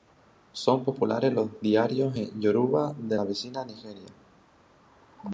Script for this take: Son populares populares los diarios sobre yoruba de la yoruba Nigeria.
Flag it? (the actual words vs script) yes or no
yes